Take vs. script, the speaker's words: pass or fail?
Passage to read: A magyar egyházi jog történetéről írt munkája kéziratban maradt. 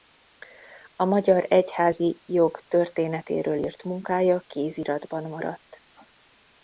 pass